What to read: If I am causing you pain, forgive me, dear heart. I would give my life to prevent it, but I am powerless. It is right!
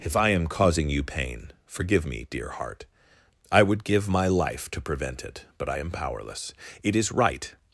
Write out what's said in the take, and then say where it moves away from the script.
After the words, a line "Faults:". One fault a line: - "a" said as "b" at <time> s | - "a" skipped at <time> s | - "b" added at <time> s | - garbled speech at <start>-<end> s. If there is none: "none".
If I am causing you pain, forgive me, dear heart. I would give my life to prevent it, but I am powerless. It is right!
Faults:
none